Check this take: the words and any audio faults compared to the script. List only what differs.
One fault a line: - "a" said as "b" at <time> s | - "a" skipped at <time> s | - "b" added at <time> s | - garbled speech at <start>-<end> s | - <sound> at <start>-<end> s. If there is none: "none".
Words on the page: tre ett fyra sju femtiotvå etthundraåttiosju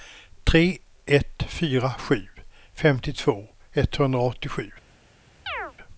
- chirp at 5.5-5.7 s